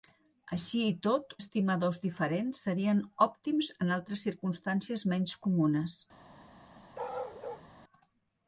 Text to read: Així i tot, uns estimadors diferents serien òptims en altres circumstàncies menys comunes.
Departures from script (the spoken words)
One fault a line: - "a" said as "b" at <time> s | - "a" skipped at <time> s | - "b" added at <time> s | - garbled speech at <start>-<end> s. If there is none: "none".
- "uns" skipped at 1.4 s